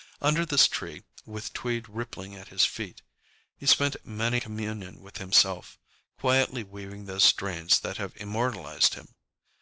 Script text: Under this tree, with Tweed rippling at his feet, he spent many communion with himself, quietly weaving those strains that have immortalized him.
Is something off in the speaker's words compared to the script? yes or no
no